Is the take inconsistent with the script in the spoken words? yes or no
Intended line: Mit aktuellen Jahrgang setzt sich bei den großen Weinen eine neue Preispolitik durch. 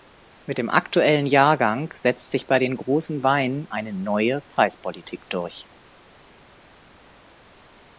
yes